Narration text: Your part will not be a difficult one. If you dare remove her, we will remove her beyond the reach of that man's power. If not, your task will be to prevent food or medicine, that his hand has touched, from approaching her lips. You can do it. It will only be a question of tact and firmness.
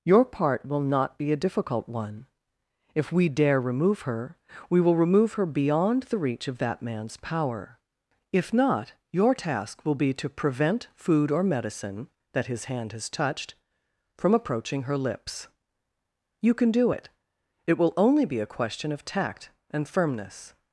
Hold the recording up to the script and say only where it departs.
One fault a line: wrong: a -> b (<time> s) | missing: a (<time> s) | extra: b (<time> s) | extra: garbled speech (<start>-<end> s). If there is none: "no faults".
wrong: you -> we (3.1 s)